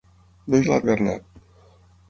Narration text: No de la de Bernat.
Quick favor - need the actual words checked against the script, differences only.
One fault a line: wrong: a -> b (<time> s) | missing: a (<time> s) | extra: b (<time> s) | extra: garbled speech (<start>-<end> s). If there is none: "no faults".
no faults